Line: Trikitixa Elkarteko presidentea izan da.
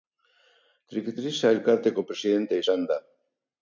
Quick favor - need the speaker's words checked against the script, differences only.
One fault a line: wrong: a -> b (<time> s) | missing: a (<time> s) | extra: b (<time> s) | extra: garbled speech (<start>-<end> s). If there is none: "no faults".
no faults